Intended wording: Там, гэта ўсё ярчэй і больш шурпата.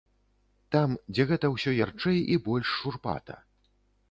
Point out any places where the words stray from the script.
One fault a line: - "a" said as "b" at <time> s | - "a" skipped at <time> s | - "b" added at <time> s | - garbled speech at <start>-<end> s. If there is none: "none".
- "дзе" added at 1.1 s